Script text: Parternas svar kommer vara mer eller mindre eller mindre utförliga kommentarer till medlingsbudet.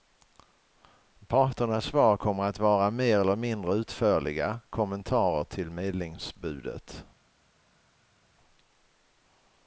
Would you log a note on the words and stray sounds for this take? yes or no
yes